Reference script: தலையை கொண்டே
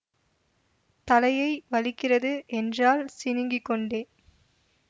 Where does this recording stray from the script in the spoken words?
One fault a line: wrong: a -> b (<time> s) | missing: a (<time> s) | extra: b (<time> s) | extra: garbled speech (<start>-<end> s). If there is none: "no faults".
extra: வலிக்கிறது என்றாள் சிணுங்கிக் (1.7 s)